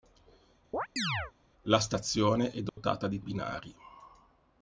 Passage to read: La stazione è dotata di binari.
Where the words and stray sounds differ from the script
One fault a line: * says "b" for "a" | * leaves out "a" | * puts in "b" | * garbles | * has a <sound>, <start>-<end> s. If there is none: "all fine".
* has a chirp, 0.7-1.3 s
* has a dropout, 2.7-2.8 s